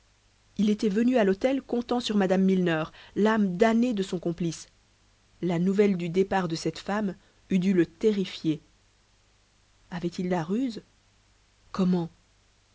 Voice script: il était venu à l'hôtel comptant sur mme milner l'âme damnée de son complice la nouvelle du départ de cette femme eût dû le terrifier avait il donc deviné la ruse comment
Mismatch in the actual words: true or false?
true